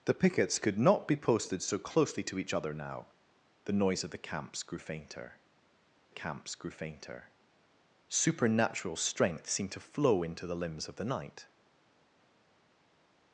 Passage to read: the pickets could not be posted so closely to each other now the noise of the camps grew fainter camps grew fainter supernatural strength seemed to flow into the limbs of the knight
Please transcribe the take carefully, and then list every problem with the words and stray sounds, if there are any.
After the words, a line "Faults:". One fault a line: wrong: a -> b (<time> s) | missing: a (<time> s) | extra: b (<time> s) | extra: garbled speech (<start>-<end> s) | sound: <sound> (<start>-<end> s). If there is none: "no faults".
the pickets could not be posted so closely to each other now the noise of the camps grew fainter camps grew fainter supernatural strength seemed to flow into the limbs of the knight
Faults:
no faults